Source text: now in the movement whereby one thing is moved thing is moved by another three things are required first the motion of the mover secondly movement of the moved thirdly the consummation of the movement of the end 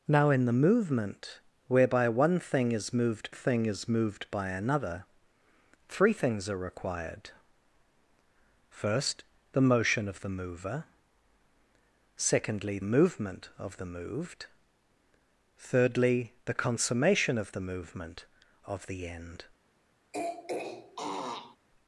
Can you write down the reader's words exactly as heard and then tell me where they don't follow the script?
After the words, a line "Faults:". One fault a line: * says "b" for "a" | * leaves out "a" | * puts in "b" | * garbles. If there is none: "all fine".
now in the movement whereby one thing is moved thing is moved by another three things are required first the motion of the mover secondly movement of the moved thirdly the consummation of the movement of the end
Faults:
all fine